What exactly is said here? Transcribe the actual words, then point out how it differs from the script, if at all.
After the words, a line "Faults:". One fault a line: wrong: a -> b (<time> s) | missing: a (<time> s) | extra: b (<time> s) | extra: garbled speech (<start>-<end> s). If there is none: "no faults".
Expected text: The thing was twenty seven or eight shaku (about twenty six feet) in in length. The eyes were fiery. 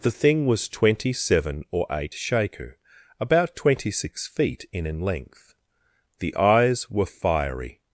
The thing was twenty seven or eight shaku (about twenty six feet) in in length. The eyes were fiery.
Faults:
no faults